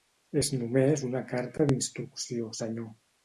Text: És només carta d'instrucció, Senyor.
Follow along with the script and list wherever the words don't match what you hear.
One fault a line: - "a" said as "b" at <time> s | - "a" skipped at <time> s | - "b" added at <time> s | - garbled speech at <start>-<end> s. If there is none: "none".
- "una" added at 1.1 s